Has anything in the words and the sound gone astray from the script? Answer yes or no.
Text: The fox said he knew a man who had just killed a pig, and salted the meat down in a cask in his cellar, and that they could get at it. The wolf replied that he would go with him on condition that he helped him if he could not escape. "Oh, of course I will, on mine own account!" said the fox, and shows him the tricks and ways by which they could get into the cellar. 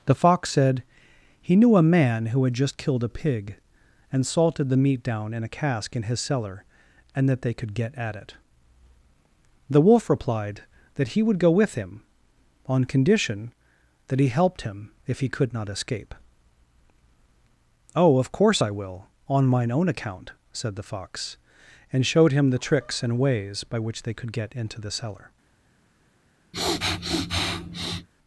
yes